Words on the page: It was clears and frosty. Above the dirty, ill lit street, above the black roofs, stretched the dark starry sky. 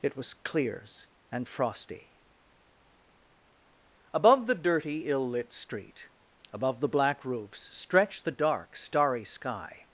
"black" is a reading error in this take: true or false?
false